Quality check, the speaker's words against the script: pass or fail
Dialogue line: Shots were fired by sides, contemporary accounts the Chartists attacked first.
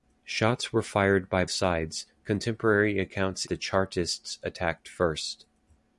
pass